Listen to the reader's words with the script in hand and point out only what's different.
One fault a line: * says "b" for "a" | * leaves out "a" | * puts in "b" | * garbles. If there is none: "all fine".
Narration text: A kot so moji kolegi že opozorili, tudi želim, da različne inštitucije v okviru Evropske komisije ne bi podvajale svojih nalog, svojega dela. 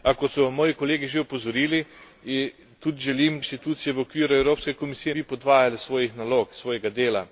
* leaves out "da različne"
* leaves out "ne"